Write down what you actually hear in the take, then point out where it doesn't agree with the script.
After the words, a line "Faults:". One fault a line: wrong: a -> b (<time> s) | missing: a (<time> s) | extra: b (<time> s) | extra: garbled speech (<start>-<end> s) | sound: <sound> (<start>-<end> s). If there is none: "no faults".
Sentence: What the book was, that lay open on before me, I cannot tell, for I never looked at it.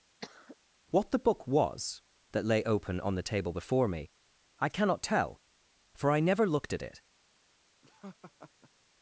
What the book was, that lay open on the table before me, I cannot tell, for I never looked at it.
Faults:
sound: cough (0.2-0.6 s)
extra: the table (3.1 s)
sound: laugh (7.8-8.7 s)